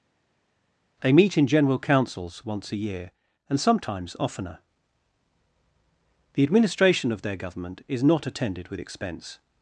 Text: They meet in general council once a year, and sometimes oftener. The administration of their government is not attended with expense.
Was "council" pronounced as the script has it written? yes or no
no